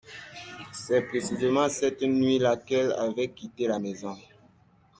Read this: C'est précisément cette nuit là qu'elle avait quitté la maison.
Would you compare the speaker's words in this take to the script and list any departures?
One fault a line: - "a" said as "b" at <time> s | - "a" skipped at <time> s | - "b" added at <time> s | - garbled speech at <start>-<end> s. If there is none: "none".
none